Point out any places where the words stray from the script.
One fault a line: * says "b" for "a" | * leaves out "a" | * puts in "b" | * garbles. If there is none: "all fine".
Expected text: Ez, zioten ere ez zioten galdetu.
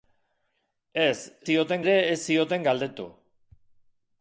all fine